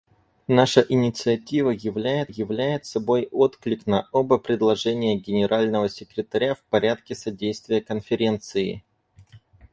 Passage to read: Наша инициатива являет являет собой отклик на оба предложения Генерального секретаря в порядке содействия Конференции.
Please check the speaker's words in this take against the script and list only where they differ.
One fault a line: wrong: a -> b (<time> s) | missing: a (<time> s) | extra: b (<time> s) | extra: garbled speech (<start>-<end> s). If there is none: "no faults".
no faults